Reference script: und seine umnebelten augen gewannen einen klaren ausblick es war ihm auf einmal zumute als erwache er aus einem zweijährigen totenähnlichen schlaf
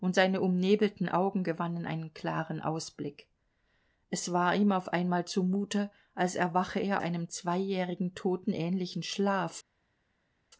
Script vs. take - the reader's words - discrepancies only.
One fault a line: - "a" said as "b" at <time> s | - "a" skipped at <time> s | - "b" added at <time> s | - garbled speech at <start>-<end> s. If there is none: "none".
- "aus" skipped at 7.0 s